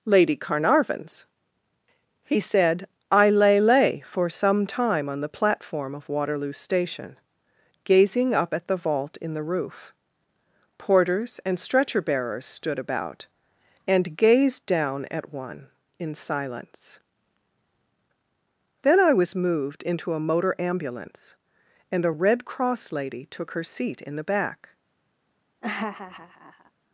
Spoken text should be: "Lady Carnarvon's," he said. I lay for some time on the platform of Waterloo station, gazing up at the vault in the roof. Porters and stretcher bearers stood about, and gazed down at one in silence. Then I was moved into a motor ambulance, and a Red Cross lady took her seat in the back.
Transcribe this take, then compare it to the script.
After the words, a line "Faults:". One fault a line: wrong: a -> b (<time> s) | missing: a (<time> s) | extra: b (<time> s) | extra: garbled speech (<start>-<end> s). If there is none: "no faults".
"Lady Carnarvon's," he said. I lay lay for some time on the platform of Waterloo station, gazing up at the vault in the roof. Porters and stretcher bearers stood about, and gazed down at one in silence. Then I was moved into a motor ambulance, and a Red Cross lady took her seat in the back.
Faults:
extra: lay (3.6 s)